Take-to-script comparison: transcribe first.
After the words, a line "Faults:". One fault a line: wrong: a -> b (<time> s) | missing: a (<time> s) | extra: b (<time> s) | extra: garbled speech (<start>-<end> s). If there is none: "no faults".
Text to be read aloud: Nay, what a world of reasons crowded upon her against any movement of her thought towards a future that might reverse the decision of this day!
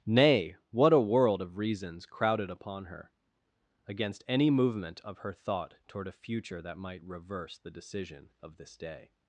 Nay, what a world of reasons crowded upon her against any movement of her thought toward a future that might reverse the decision of this day!
Faults:
wrong: towards -> toward (5.9 s)